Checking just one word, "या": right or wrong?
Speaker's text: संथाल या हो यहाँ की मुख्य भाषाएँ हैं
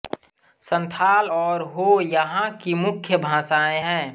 wrong